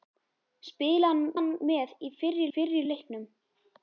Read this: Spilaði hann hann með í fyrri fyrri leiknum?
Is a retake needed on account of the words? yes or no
no